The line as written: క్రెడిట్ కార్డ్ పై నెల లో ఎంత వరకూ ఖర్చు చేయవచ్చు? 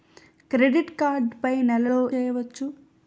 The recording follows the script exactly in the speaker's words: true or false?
false